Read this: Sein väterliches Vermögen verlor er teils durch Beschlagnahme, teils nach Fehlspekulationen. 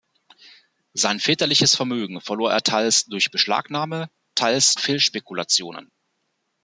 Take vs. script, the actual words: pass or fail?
fail